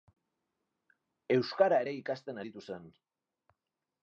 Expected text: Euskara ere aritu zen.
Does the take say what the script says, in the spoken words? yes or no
no